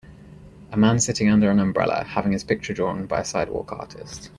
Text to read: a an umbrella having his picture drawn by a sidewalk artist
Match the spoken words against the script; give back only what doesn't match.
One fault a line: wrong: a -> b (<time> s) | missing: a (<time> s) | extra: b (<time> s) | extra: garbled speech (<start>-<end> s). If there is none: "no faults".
extra: man sitting under (0.8 s)